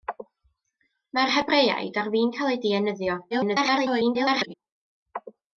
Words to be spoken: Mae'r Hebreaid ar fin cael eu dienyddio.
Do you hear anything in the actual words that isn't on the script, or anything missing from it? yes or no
yes